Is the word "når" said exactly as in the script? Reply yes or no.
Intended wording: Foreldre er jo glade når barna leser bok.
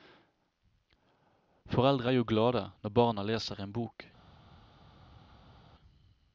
yes